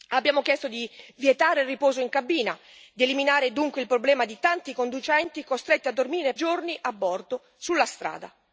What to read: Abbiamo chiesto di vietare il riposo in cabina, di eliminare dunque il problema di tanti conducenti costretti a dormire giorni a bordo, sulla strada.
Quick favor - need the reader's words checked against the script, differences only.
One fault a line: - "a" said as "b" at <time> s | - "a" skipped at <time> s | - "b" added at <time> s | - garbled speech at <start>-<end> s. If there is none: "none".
none